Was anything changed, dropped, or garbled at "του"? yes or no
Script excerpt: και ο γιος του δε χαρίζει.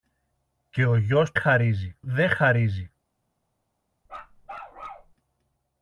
yes